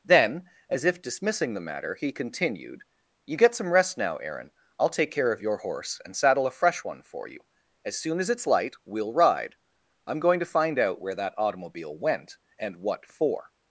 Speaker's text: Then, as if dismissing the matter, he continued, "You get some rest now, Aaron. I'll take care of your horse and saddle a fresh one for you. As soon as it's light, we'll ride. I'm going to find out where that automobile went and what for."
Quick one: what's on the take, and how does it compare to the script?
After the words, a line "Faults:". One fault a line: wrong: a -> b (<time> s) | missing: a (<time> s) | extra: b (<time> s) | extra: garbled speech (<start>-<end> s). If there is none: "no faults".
Then, as if dismissing the matter, he continued, "You get some rest now, Aaron. I'll take care of your horse and saddle a fresh one for you. As soon as it's light, we'll ride. I'm going to find out where that automobile went and what for."
Faults:
no faults